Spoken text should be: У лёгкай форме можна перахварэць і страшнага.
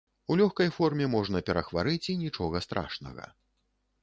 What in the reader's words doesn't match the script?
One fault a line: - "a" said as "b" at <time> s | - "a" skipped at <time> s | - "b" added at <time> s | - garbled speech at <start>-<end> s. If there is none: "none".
- "нічога" added at 2.2 s